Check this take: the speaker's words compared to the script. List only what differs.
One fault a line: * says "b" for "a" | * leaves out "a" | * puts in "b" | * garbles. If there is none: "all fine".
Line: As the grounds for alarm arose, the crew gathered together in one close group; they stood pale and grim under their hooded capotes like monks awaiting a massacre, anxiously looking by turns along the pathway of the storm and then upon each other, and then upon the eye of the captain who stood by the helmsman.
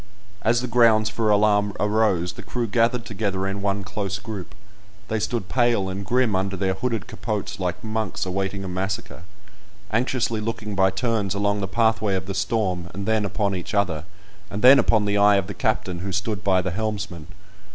all fine